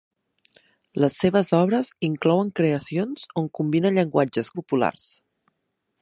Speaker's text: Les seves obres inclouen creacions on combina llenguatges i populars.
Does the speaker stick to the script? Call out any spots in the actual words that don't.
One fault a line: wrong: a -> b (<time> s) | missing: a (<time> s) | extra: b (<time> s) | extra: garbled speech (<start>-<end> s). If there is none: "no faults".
no faults